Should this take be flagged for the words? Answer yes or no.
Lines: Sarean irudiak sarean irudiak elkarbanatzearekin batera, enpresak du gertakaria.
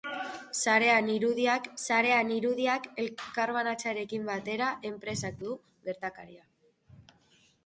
no